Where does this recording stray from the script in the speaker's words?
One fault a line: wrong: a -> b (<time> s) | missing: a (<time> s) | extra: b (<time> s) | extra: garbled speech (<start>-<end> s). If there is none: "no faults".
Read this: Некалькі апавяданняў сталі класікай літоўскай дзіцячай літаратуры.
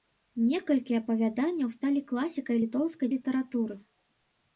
missing: дзіцячай (3.1 s)